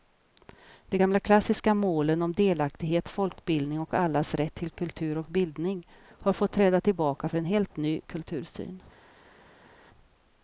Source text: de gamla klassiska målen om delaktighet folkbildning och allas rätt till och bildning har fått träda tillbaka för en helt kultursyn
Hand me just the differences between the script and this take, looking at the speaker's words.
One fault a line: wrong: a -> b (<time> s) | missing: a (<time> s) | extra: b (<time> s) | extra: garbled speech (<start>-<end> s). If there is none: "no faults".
extra: kultur (4.7 s)
extra: ny (7.8 s)